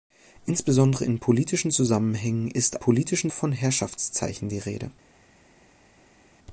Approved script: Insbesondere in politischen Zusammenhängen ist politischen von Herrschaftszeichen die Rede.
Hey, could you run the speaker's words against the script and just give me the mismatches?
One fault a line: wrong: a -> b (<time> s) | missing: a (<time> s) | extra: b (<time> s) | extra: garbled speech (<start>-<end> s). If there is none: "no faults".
no faults